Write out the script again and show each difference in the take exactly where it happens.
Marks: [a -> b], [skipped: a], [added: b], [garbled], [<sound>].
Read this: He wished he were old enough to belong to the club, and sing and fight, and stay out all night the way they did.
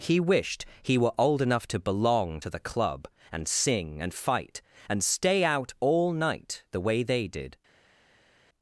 He wished he were old enough to belong to the club, and sing and fight, and stay out all night the way they did.